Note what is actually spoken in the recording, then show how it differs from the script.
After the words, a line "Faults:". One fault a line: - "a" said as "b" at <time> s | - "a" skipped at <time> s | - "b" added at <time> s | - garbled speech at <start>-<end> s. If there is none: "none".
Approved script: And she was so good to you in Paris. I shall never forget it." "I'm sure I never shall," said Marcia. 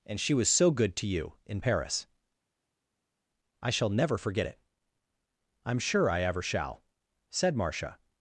And she was so good to you in Paris. I shall never forget it." "I'm sure I ever shall," said Marcia.
Faults:
- "never" said as "ever" at 6.2 s